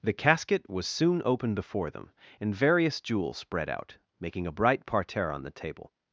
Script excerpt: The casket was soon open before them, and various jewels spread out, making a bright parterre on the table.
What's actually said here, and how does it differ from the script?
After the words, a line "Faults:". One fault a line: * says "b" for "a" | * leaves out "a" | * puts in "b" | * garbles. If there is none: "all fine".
The casket was soon open before them, and various jewels spread out, making a bright parterre on the table.
Faults:
all fine